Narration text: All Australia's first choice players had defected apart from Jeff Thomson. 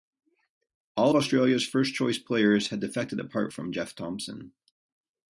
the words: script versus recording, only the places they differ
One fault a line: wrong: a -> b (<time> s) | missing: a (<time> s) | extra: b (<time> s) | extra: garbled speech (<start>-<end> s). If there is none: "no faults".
no faults